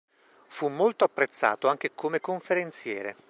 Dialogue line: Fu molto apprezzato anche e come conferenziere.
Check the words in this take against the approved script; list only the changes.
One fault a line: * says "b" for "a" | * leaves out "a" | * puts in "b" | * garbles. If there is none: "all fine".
all fine